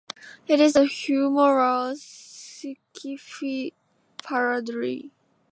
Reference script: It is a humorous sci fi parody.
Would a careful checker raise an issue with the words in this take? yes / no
no